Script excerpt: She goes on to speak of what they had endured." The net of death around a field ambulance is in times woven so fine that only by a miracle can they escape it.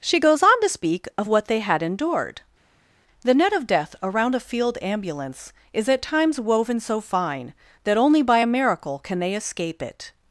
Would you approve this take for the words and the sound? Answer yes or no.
no